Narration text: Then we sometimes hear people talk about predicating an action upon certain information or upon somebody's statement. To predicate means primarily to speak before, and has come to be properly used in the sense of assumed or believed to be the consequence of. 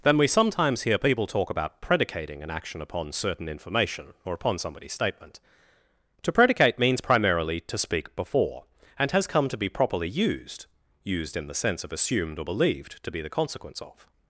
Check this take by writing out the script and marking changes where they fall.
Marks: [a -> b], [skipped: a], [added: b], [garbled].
Then we sometimes hear people talk about predicating an action upon certain information or upon somebody's statement. To predicate means primarily to speak before, and has come to be properly used [added: used] in the sense of assumed or believed to be the consequence of.